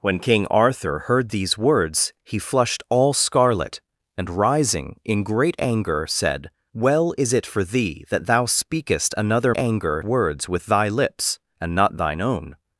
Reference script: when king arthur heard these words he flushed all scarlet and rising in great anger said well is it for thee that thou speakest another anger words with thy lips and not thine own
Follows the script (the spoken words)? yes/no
yes